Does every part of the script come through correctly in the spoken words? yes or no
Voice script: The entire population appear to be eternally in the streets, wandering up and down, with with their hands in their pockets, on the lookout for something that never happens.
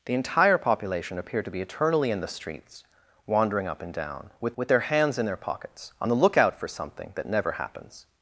yes